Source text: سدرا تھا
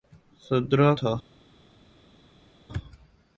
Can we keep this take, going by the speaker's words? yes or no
yes